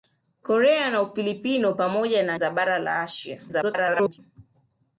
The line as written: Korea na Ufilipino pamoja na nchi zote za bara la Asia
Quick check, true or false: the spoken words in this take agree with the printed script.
false